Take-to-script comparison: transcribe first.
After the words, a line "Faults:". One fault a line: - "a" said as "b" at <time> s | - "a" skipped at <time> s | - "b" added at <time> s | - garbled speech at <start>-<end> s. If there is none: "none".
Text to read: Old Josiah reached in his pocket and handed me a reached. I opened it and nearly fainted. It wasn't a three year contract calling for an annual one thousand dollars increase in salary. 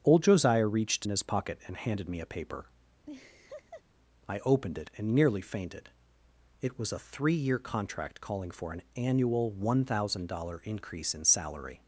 Old Josiah reached in his pocket and handed me a paper. I opened it and nearly fainted. It was a three year contract calling for an annual one thousand dollars increase in salary.
Faults:
- "reached" said as "paper" at 2.3 s
- "wasn't" said as "was" at 6.8 s